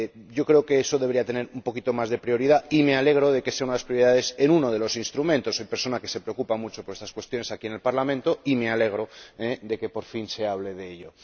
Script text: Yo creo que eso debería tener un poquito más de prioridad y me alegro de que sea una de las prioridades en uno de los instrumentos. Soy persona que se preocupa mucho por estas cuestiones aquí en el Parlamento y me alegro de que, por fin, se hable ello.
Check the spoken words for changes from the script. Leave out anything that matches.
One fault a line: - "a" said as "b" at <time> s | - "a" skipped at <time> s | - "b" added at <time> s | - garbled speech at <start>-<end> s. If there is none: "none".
- "de" added at 10.7 s